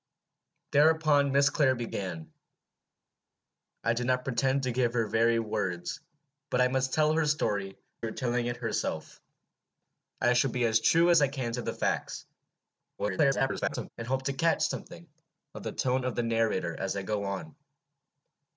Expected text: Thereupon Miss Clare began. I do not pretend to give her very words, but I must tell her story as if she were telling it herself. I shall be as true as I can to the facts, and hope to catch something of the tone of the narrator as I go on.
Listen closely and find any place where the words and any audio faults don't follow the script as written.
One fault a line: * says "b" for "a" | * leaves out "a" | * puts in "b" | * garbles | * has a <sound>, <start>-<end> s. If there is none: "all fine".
* leaves out "as if she"
* garbles